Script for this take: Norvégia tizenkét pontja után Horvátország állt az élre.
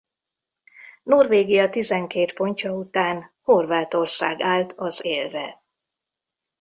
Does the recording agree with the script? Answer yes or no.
yes